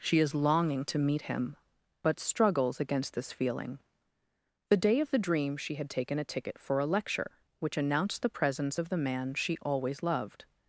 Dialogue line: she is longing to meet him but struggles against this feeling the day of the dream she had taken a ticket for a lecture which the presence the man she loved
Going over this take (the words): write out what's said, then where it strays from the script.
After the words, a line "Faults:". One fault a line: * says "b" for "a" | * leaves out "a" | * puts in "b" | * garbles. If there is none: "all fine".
she is longing to meet him but struggles against this feeling the day of the dream she had taken a ticket for a lecture which announced the presence of the man she always loved
Faults:
* puts in "announced"
* puts in "of"
* puts in "always"